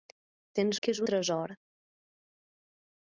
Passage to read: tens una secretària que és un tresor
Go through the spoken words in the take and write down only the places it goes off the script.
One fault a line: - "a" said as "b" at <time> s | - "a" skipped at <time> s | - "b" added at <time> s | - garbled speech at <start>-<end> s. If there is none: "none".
- "una secretària" skipped at 0.8 s
- "un" skipped at 1.0 s